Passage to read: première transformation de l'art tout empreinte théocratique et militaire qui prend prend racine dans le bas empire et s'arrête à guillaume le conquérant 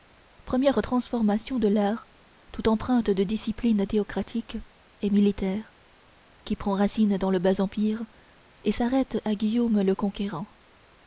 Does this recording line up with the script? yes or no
no